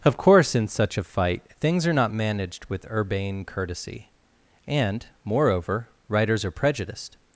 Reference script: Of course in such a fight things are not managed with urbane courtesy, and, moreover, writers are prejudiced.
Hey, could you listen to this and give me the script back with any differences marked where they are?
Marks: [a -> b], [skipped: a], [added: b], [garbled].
Of course in such a fight things are not managed with urbane courtesy, and, moreover, writers are prejudiced.